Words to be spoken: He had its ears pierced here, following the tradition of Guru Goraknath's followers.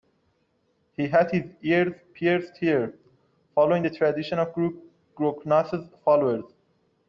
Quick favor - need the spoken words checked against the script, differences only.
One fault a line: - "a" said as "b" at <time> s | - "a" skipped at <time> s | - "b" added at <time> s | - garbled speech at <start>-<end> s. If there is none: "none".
- "its" said as "his" at 1.3 s